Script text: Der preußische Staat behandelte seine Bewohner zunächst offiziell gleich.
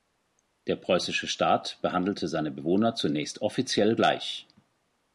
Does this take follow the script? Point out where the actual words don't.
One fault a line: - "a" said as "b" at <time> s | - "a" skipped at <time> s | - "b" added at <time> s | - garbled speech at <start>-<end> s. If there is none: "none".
none